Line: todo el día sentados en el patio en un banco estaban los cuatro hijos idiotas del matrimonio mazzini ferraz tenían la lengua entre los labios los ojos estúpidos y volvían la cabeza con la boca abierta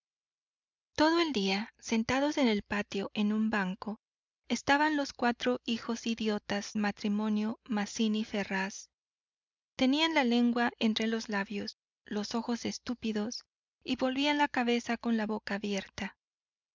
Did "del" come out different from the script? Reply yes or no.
yes